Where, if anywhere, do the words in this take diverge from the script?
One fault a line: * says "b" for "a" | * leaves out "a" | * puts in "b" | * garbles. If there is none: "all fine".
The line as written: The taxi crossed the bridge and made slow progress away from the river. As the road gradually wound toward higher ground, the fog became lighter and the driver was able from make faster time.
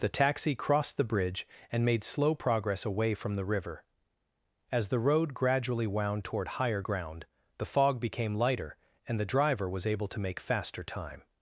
* says "to" for "from"